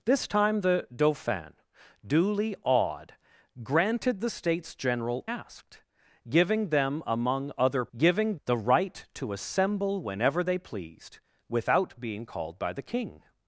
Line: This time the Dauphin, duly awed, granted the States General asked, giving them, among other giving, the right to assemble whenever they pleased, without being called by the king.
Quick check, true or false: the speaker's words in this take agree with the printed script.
true